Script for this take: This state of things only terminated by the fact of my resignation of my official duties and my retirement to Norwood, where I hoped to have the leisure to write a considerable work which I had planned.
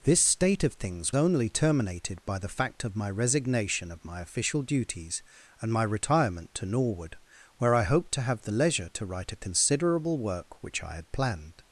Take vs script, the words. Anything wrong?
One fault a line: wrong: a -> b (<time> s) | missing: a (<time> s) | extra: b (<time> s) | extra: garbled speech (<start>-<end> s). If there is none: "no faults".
no faults